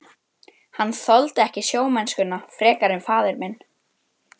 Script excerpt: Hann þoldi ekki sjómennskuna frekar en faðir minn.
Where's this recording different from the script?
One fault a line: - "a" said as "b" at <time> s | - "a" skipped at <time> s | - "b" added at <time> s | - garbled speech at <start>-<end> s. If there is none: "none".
none